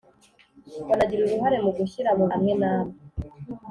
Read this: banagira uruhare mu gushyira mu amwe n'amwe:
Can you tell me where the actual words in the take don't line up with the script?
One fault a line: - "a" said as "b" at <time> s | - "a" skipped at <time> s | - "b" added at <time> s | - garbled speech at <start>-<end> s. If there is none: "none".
none